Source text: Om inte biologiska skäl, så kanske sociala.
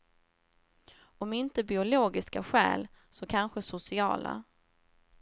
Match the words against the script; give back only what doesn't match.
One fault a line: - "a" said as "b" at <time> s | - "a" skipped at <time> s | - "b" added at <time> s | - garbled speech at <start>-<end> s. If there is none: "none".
none